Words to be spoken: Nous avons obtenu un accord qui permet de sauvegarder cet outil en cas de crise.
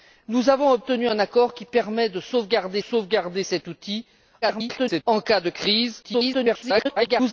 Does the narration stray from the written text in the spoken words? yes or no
yes